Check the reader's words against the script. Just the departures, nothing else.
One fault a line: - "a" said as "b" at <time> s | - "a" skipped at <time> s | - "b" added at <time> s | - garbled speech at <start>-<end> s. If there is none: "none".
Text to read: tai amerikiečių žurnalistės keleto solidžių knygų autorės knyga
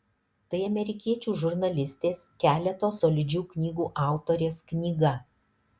none